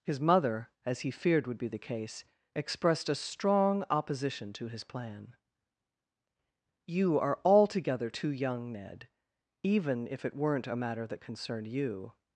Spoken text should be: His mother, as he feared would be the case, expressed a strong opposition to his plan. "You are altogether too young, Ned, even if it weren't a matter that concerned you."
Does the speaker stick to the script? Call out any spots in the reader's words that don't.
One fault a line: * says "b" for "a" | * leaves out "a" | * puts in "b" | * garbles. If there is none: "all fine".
all fine